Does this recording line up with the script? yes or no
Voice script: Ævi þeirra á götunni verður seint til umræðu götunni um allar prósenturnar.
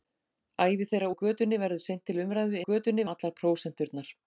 yes